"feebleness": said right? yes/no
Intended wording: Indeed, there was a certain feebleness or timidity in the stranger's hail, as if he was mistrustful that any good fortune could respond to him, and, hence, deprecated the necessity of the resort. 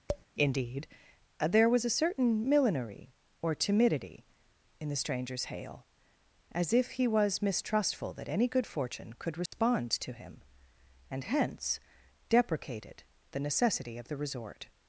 no